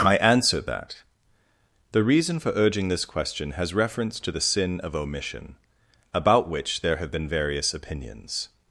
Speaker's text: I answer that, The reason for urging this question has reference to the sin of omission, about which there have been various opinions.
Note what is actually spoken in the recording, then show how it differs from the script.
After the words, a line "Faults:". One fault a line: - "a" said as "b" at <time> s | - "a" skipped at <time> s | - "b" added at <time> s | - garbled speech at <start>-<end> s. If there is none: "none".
I answer that, The reason for urging this question has reference to the sin of omission, about which there have been various opinions.
Faults:
none